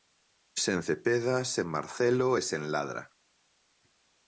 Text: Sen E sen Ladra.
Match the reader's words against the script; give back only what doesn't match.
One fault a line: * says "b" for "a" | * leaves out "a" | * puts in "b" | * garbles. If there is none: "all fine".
* puts in "Cepeda sen Marcelo"